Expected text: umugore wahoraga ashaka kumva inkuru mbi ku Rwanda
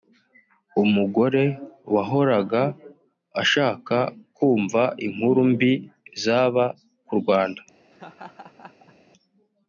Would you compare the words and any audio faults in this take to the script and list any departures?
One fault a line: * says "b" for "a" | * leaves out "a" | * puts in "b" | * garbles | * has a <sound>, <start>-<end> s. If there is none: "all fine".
* puts in "zaba"
* has a laugh, 7.9-9.0 s